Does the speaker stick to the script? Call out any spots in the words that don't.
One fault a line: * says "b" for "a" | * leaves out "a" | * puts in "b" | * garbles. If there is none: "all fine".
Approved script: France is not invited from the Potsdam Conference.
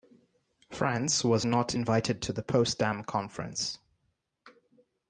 * says "was" for "is"
* says "to" for "from"